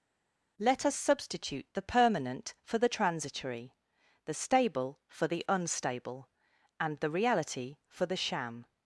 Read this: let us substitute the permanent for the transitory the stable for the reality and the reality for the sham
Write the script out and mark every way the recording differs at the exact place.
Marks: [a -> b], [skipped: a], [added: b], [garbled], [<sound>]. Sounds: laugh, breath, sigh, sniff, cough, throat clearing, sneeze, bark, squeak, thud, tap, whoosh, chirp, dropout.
let us substitute the permanent for the transitory the stable for the [reality -> unstable] and the reality for the sham